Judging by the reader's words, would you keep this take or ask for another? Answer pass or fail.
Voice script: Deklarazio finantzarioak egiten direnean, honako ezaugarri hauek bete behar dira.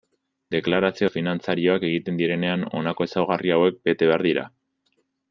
pass